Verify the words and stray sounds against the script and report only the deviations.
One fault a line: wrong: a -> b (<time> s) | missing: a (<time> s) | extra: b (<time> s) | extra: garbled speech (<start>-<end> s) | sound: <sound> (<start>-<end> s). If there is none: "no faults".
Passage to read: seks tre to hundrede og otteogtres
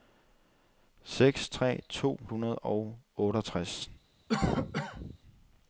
sound: cough (4.3-5.2 s)